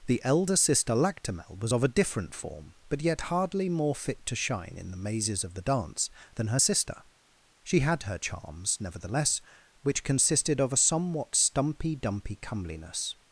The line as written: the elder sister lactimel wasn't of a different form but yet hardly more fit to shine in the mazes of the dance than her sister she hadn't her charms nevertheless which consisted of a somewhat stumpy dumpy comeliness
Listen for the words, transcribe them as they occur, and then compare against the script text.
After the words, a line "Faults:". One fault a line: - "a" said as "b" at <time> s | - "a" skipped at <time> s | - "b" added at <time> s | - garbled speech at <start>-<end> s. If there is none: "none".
the elder sister lactimel was of a different form but yet hardly more fit to shine in the mazes of the dance than her sister she had her charms nevertheless which consisted of a somewhat stumpy dumpy comeliness
Faults:
- "wasn't" said as "was" at 1.6 s
- "hadn't" said as "had" at 7.8 s